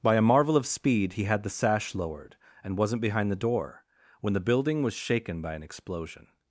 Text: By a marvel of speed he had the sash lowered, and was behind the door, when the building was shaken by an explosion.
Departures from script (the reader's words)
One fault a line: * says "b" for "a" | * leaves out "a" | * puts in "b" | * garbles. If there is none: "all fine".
* says "wasn't" for "was"